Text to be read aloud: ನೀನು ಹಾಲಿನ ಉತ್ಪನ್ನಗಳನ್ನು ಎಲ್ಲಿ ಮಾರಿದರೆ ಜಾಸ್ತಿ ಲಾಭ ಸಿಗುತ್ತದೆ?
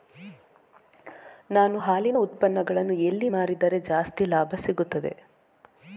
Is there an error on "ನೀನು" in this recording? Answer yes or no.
yes